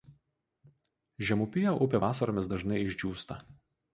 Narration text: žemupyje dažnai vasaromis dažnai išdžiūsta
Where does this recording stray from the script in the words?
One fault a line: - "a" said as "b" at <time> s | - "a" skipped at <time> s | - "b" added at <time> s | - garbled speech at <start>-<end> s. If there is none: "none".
- "dažnai" said as "upė" at 1.9 s